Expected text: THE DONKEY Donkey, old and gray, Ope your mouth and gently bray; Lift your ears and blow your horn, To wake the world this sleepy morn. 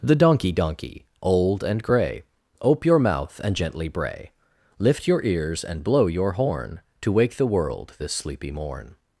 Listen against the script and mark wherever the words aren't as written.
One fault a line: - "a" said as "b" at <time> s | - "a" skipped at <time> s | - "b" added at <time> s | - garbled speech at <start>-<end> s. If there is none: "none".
none